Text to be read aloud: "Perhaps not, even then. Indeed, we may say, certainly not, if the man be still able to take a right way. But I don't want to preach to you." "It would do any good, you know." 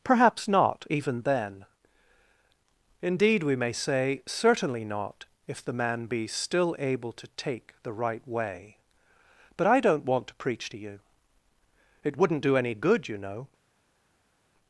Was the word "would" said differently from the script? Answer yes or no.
yes